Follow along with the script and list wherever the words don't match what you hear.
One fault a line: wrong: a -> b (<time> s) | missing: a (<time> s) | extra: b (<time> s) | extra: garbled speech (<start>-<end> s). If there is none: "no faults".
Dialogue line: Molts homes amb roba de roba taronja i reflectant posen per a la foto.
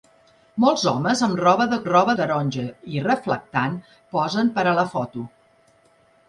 no faults